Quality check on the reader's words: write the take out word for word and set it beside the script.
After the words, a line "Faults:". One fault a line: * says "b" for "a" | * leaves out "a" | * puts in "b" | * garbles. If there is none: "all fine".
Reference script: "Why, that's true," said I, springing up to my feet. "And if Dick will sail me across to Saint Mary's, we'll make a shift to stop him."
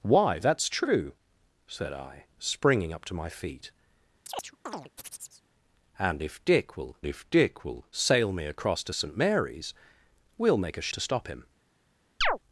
"Why, that's true," said I, springing up to my feet. "And if Dick will if Dick will sail me across to Saint Mary's, we'll make a to stop him."
Faults:
* puts in "if Dick will"
* leaves out "shift"